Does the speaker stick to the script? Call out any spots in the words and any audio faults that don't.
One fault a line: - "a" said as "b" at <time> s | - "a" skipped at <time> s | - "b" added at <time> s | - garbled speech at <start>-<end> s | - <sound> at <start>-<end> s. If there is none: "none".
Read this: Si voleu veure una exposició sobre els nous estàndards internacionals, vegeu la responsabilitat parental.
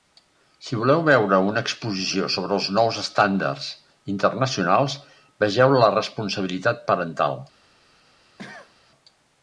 - cough at 8.4-8.7 s